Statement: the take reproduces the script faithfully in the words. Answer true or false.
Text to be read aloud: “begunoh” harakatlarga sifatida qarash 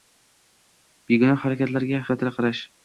true